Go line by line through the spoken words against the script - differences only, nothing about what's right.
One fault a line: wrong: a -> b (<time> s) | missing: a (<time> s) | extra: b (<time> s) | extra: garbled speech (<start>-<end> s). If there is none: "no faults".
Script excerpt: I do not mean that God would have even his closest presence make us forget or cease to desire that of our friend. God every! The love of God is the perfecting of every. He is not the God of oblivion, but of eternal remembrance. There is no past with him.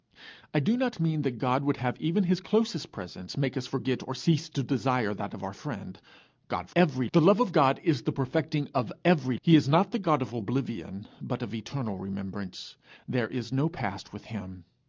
no faults